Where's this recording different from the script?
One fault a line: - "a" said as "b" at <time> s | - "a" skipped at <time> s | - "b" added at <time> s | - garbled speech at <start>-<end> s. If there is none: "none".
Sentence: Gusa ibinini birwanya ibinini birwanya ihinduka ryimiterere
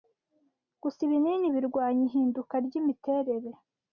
- "ibinini birwanya" skipped at 2.0 s